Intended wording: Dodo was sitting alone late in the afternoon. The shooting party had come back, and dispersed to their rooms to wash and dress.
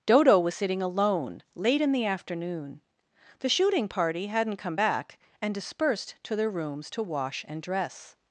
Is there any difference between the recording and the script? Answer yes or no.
yes